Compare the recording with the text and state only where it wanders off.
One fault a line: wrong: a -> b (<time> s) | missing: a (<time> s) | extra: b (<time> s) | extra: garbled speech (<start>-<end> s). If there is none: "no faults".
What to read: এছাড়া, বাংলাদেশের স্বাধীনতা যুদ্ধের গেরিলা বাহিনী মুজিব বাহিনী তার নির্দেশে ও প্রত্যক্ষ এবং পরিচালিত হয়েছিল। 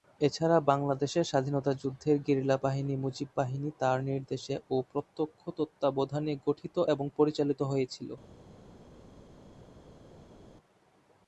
extra: তত্ত্বাবধানে গঠিত (5.6 s)